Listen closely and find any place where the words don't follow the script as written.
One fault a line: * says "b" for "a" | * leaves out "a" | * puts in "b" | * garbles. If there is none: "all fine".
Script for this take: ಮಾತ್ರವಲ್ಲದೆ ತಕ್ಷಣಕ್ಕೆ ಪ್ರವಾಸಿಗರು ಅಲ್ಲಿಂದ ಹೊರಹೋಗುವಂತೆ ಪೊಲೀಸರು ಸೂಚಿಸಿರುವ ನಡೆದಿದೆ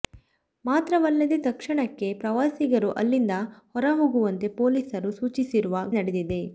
all fine